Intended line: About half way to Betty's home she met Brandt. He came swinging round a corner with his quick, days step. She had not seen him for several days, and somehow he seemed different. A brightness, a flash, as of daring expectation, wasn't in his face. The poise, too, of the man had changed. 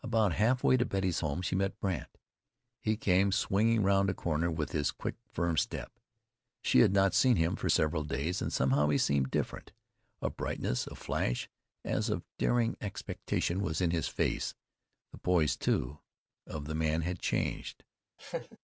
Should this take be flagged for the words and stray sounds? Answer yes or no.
yes